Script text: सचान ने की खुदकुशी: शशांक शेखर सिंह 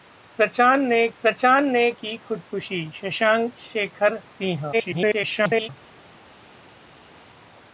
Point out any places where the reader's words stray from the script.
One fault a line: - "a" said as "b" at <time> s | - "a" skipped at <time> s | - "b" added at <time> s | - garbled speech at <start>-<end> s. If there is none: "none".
- "सचान ने" added at 1.2 s
- garbled speech at 4.7-5.7 s